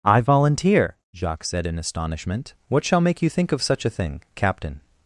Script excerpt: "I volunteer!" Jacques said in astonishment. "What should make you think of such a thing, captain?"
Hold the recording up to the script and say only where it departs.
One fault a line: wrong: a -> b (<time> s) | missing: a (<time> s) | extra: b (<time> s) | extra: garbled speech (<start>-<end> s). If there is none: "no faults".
wrong: should -> shall (2.8 s)